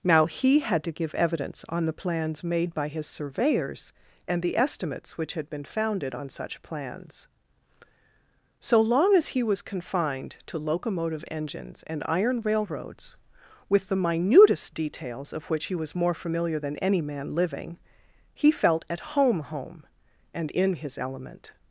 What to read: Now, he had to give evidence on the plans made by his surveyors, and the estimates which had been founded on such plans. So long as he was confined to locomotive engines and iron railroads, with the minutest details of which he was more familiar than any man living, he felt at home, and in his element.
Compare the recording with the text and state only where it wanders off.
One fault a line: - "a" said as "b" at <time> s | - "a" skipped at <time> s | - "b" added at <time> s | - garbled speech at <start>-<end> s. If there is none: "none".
- "home" added at 19.4 s